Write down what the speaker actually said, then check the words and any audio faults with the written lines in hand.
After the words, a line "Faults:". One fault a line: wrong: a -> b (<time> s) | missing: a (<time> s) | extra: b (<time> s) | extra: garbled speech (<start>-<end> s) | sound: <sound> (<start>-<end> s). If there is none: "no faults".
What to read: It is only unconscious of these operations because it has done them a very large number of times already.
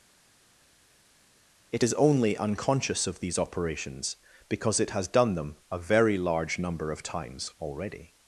It is only unconscious of these operations because it has done them a very large number of times already.
Faults:
no faults